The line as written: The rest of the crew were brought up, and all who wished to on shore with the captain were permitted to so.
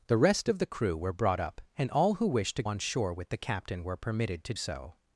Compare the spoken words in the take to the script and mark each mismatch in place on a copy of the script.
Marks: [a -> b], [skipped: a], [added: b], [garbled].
The rest of the crew were brought up, and all who wished to on shore with the captain were permitted to so.